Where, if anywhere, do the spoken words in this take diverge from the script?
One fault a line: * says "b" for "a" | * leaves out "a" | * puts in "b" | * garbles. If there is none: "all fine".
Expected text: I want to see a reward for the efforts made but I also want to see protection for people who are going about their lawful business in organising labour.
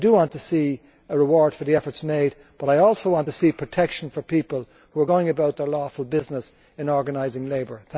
all fine